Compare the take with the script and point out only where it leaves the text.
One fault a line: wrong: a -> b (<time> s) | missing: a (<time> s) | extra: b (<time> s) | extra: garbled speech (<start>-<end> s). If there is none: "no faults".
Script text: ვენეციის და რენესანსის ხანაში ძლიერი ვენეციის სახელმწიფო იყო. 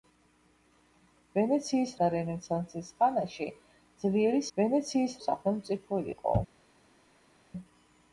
no faults